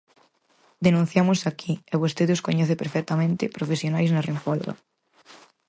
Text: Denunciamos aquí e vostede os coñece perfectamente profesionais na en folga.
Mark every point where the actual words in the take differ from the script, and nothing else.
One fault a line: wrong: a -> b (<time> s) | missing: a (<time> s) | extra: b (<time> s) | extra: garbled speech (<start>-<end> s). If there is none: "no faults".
no faults